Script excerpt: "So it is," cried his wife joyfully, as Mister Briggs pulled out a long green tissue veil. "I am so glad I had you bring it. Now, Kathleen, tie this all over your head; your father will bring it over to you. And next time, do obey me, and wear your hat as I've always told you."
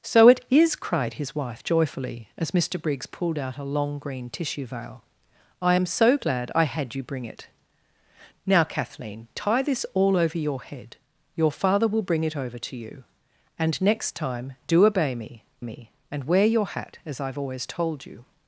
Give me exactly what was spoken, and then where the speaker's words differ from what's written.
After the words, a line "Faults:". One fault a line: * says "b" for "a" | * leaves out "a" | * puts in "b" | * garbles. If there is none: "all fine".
"So it is," cried his wife joyfully, as Mister Briggs pulled out a long green tissue veil. "I am so glad I had you bring it. Now, Kathleen, tie this all over your head; your father will bring it over to you. And next time, do obey me me, and wear your hat as I've always told you."
Faults:
* puts in "me"